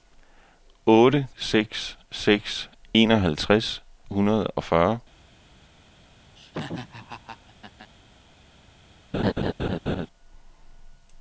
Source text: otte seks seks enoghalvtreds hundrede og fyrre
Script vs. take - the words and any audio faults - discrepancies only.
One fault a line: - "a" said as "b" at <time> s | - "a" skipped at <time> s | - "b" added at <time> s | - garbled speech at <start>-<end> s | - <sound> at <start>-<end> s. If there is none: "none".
- laugh at 6.4-7.9 s
- laugh at 9.1-10.1 s